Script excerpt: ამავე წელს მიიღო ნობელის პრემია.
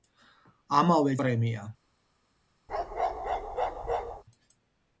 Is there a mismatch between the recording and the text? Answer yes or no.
yes